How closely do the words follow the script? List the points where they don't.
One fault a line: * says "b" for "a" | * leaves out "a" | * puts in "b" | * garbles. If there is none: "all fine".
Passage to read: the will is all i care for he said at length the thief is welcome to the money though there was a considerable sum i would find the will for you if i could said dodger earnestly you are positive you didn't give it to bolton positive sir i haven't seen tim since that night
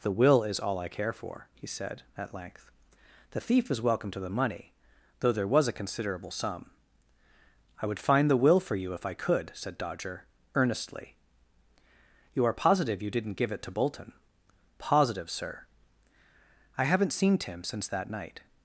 all fine